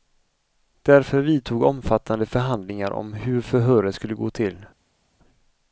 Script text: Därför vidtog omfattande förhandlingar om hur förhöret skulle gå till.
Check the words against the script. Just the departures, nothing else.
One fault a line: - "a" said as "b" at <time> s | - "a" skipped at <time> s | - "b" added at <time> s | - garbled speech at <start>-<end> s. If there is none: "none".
none